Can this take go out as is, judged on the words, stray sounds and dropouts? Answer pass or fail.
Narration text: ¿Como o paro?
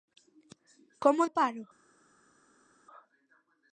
pass